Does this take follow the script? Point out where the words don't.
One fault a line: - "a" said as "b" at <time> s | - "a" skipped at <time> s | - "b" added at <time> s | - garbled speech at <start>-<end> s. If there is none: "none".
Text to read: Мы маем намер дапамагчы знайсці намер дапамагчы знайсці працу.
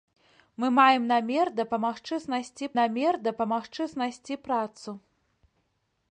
none